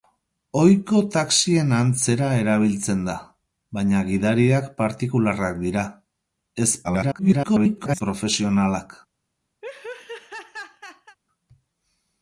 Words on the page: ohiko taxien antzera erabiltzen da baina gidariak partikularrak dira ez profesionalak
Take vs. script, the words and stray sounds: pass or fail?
fail